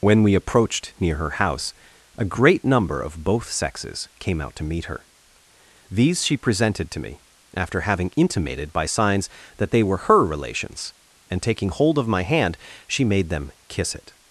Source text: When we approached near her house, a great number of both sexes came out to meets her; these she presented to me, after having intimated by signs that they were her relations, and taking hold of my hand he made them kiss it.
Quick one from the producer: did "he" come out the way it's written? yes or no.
no